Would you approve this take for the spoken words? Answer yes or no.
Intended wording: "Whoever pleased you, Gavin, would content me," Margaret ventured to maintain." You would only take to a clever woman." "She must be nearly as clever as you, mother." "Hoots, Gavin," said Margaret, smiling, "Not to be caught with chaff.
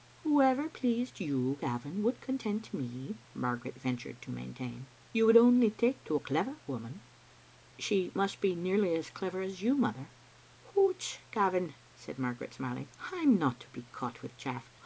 no